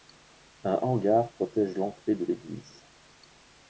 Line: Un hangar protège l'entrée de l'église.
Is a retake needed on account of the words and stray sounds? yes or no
no